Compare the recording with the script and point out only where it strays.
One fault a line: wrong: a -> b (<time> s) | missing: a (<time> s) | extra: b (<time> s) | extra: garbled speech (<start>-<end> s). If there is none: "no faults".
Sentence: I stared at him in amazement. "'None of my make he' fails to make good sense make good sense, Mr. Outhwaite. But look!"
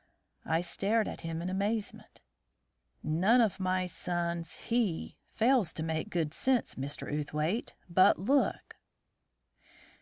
wrong: make -> sons (3.9 s)
missing: make good sense (6.7 s)